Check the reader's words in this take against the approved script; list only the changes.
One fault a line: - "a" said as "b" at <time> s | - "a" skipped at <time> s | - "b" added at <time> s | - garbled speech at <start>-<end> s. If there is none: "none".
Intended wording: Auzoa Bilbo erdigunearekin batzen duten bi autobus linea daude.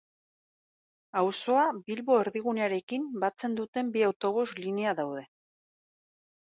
none